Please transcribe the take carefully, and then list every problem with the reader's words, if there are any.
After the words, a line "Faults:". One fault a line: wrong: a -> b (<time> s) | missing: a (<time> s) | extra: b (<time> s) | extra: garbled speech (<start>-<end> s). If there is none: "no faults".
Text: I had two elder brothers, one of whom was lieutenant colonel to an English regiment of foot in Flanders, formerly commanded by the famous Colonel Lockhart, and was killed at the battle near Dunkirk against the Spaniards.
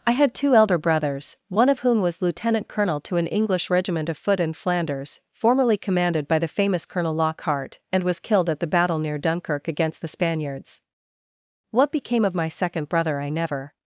I had two elder brothers, one of whom was lieutenant colonel to an English regiment of foot in Flanders, formerly commanded by the famous Colonel Lockhart, and was killed at the battle near Dunkirk against the Spaniards. What became of my second brother I never
Faults:
extra: What became of my second brother I never (11.7 s)